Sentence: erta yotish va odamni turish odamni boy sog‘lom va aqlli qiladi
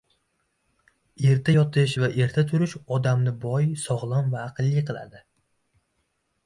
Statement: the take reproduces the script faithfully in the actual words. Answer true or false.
false